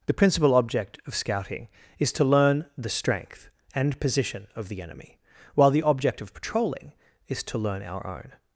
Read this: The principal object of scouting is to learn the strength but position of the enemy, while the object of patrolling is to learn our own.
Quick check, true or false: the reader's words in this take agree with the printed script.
false